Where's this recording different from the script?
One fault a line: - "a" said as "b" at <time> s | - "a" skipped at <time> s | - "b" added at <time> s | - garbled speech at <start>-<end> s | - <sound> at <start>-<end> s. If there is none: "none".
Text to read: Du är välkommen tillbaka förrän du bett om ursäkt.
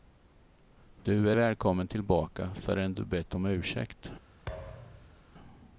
- thud at 4.5-5.2 s